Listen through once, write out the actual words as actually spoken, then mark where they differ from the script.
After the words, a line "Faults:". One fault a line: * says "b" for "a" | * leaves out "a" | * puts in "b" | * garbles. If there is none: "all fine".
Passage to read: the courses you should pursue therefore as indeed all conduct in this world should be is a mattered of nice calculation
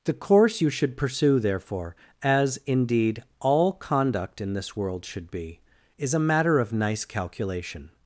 the course you should pursue therefore as indeed all conduct in this world should be is a matter of nice calculation
Faults:
* says "course" for "courses"
* says "matter" for "mattered"